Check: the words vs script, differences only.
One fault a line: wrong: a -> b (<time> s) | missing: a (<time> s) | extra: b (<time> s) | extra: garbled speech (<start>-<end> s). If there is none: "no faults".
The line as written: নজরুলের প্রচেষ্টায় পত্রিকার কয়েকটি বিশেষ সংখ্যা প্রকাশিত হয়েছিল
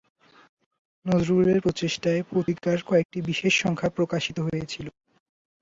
no faults